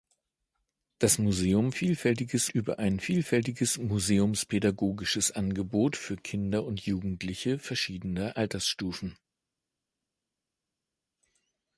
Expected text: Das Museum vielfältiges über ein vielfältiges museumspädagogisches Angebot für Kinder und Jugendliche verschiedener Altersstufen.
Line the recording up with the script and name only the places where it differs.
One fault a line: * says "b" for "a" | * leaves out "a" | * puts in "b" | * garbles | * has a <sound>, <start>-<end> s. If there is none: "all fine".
all fine